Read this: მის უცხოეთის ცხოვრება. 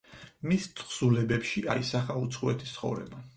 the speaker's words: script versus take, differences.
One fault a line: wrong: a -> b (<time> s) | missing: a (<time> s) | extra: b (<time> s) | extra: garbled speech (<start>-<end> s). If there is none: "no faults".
extra: თხზულებებში აისახა (0.8 s)